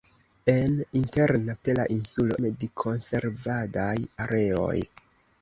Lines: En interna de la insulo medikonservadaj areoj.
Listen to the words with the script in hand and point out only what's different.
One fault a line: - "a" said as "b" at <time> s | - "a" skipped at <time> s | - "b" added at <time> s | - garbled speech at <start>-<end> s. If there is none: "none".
none